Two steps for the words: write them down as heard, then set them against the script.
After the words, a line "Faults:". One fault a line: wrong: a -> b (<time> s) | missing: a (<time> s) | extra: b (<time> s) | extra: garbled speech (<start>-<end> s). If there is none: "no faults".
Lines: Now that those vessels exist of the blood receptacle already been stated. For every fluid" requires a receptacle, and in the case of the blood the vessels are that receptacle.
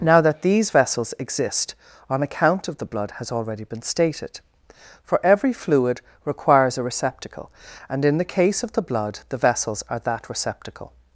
Now that these vessels exist on account of the blood has already been stated. For every fluid" requires a receptacle, and in the case of the blood the vessels are that receptacle.
Faults:
wrong: those -> these (0.4 s)
extra: on account (2.1 s)
wrong: receptacle -> has (3.2 s)